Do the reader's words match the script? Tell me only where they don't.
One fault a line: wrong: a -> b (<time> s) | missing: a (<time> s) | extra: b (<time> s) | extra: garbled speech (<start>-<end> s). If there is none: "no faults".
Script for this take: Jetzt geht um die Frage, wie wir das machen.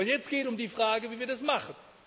no faults